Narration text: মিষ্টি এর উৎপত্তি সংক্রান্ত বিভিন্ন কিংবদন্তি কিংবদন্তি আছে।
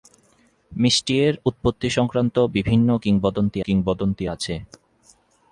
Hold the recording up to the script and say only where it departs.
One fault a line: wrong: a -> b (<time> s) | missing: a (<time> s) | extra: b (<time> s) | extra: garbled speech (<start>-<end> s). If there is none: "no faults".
no faults